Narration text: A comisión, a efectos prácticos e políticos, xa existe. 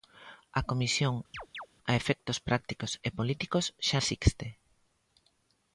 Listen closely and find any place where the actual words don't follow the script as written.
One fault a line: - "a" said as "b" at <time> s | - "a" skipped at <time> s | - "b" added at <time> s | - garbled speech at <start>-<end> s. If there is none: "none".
none